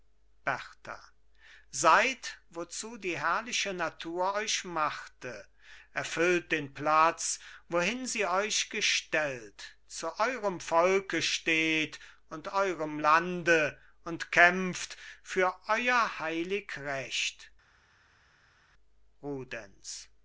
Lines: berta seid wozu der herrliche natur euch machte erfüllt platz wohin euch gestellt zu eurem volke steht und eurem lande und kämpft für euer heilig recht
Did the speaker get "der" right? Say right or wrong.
wrong